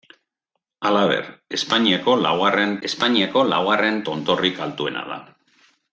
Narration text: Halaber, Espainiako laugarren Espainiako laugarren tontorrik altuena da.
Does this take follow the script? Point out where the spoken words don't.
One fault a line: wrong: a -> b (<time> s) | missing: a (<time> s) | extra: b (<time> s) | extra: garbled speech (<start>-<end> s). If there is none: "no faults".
no faults